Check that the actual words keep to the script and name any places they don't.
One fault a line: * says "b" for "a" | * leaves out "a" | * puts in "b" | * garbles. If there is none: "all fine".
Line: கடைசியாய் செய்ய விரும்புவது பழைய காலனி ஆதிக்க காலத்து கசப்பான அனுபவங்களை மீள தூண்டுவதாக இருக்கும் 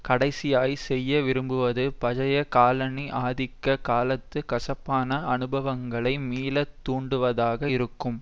all fine